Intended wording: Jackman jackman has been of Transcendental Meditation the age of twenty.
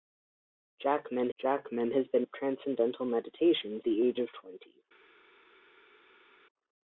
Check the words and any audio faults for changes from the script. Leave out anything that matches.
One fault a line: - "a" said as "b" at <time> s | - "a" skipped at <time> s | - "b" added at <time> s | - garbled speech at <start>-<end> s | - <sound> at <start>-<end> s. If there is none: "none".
none